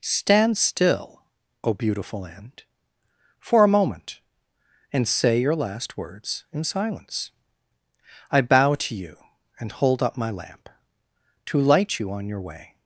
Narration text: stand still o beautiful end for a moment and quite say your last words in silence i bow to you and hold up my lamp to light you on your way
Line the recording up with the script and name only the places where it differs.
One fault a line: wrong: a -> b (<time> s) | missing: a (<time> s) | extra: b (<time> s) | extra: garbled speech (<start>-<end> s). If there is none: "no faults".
missing: quite (5.1 s)